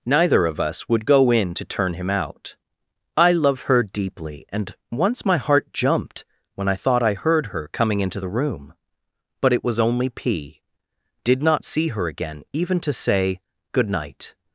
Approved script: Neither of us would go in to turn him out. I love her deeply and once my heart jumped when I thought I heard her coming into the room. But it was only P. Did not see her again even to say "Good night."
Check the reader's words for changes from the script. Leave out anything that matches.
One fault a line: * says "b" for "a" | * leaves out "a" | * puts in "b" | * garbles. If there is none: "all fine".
all fine